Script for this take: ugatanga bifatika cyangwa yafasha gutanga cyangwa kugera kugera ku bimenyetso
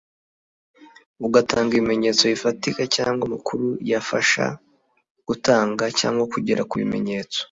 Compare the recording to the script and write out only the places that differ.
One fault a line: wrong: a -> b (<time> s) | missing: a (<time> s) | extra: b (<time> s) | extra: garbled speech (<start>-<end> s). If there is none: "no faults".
extra: ibimenyetso (1.7 s)
extra: amakuru (3.3 s)
missing: kugera (6.6 s)